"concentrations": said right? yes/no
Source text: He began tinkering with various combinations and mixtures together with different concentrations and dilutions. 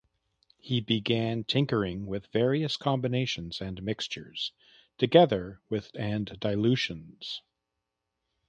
no